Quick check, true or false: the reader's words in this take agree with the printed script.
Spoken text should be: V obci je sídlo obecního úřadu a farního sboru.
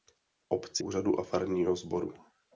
false